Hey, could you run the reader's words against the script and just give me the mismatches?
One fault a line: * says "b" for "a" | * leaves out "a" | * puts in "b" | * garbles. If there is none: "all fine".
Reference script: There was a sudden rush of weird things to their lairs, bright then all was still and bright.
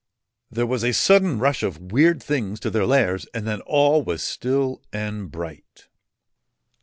* says "and" for "bright"